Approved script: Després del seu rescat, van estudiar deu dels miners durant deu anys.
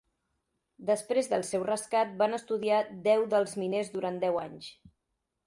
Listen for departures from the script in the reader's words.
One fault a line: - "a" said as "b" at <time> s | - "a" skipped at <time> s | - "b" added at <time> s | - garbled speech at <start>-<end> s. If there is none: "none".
none